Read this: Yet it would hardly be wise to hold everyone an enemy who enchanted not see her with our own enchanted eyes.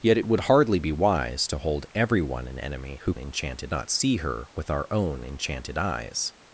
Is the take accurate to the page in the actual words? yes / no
yes